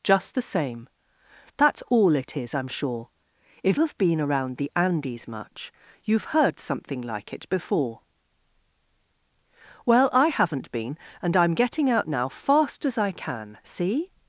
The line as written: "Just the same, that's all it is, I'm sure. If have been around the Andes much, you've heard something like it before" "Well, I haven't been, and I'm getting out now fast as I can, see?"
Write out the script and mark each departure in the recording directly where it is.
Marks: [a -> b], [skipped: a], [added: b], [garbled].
"Just the same, that's all it is, I'm sure. If have been around the Andes much, you've heard something like it before" "Well, I haven't been, and I'm getting out now fast as I can, see?"